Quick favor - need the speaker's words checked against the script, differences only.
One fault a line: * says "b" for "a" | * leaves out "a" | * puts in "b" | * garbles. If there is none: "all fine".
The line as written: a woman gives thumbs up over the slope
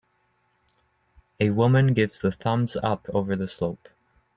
* puts in "the"